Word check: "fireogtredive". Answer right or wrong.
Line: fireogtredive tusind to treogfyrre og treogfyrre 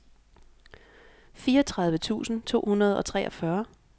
right